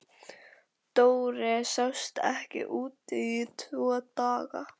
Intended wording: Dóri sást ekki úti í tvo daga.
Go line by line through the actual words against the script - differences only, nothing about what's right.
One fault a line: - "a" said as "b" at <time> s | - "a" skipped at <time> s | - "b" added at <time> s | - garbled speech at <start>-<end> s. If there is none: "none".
none